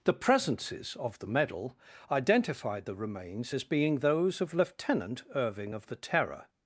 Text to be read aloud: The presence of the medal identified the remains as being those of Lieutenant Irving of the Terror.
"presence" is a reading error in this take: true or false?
true